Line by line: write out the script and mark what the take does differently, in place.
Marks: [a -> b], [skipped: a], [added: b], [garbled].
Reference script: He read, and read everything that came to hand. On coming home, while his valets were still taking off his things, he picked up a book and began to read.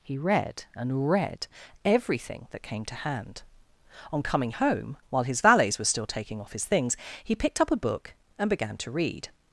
He read, and read everything that came to hand. On coming home, while his valets were still taking off his things, he picked up a book and began to read.